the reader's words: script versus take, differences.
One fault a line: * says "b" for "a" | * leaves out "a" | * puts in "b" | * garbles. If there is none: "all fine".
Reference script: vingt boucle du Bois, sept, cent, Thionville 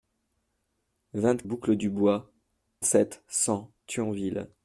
all fine